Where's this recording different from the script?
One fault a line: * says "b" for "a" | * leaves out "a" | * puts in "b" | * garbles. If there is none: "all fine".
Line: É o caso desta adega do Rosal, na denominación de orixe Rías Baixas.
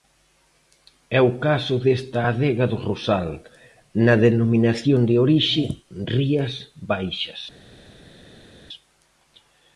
all fine